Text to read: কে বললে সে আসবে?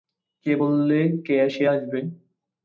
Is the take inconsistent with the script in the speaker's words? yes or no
no